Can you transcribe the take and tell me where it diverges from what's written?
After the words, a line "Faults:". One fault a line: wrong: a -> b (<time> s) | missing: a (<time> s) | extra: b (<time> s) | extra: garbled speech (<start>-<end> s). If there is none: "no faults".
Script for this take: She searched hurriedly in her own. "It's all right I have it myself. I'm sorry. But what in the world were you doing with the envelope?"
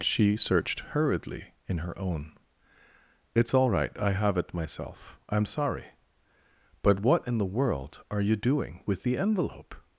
She searched hurriedly in her own. "It's all right I have it myself. I'm sorry. But what in the world are you doing with the envelope?"
Faults:
wrong: were -> are (8.1 s)